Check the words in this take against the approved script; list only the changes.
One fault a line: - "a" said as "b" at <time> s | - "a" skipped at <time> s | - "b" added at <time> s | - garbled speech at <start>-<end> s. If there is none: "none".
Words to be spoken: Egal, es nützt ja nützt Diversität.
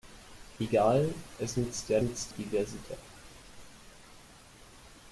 none